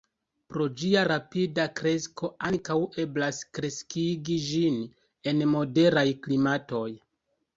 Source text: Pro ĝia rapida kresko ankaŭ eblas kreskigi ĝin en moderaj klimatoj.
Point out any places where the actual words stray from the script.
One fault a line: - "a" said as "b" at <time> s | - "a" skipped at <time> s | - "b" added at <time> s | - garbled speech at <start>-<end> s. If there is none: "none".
none